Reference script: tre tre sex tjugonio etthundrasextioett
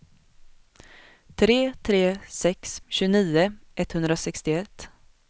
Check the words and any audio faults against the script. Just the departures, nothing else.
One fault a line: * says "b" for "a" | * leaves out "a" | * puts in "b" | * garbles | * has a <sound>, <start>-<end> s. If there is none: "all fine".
all fine